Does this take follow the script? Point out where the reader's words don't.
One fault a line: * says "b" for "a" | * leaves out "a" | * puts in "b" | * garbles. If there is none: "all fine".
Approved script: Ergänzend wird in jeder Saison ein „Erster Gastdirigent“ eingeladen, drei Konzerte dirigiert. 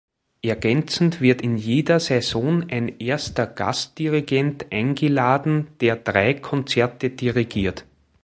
* puts in "der"